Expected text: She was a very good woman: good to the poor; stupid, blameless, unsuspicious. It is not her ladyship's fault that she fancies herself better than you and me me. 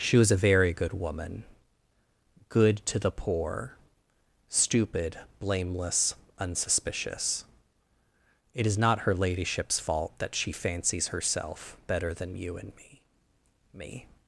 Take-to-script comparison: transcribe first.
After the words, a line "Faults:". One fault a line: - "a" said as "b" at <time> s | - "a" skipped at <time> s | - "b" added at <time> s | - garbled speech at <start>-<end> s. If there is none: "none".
She was a very good woman: good to the poor; stupid, blameless, unsuspicious. It is not her ladyship's fault that she fancies herself better than you and me me.
Faults:
none